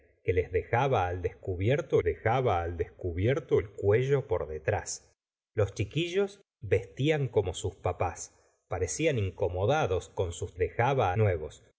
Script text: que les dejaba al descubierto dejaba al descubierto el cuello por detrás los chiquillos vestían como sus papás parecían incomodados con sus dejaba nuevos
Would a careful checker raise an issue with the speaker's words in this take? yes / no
no